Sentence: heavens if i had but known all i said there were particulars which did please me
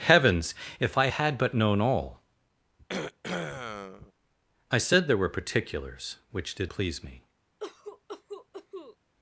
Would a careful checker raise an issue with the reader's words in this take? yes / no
no